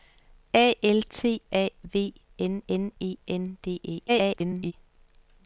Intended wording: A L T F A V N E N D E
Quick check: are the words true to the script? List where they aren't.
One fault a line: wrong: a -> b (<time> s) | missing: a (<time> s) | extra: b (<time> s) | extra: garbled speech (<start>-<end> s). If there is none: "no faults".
missing: F (1.4 s)
extra: N (2.7 s)
extra: garbled speech (4.1-4.7 s)